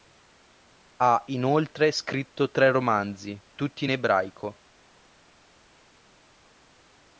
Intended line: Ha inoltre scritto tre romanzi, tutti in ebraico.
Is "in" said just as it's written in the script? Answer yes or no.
yes